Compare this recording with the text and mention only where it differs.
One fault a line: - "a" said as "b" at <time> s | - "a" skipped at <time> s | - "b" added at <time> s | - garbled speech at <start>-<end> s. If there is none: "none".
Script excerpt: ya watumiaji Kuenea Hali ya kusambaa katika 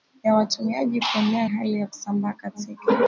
none